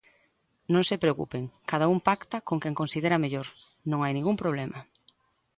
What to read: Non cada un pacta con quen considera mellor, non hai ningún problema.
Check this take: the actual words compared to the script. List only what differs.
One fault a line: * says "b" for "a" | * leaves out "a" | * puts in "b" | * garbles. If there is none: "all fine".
* puts in "se preocupen"